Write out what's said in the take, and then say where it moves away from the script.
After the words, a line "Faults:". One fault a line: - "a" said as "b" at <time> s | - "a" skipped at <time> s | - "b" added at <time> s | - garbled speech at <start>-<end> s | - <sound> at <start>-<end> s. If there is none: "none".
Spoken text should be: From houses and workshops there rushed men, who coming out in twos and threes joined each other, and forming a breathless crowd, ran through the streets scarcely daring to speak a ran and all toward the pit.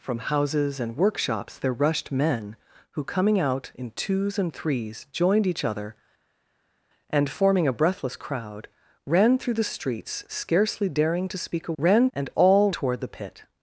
From houses and workshops there rushed men, who coming out in twos and threes joined each other, and forming a breathless crowd, ran through the streets scarcely daring to speak a ran and all toward the pit.
Faults:
none